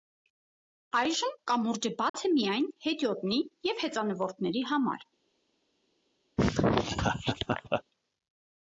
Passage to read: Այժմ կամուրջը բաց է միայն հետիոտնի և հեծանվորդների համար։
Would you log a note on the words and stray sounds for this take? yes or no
yes